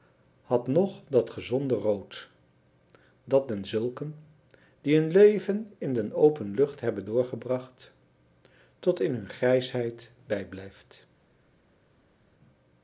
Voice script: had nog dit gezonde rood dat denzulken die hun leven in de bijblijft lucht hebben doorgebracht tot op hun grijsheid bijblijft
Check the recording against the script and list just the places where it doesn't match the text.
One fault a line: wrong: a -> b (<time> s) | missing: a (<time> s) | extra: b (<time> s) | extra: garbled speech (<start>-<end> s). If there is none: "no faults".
wrong: dit -> dat (1.1 s)
wrong: bijblijft -> open (6.1 s)
wrong: op -> in (9.0 s)